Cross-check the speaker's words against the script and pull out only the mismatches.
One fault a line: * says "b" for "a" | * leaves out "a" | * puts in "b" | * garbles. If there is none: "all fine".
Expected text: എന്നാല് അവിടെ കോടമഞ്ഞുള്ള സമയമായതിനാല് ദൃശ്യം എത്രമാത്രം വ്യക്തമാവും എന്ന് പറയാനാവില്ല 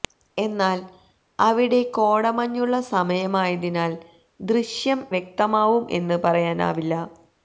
* leaves out "എത്രമാത്രം"